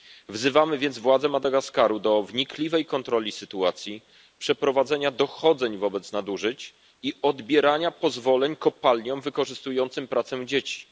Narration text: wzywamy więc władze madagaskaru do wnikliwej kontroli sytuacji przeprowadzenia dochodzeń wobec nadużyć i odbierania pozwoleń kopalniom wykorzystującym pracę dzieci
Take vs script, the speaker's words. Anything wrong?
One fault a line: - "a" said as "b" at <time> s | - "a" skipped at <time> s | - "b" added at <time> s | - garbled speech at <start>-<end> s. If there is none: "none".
none